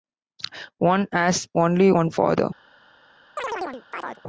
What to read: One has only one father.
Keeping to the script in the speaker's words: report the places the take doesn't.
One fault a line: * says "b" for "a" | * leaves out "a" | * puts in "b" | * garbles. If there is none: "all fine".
all fine